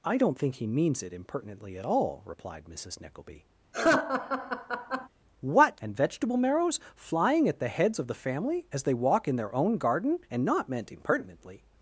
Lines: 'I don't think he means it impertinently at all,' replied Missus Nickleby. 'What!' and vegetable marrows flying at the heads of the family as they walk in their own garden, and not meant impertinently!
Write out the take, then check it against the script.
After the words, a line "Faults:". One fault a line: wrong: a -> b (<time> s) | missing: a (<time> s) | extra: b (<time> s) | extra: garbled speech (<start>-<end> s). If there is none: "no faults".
'I don't think he means it impertinently at all,' replied Missus Nickleby. 'What!' and vegetable marrows flying at the heads of the family as they walk in their own garden, and not meant impertinently!
Faults:
no faults